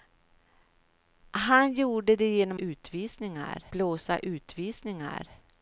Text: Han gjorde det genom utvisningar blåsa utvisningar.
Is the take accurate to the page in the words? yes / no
yes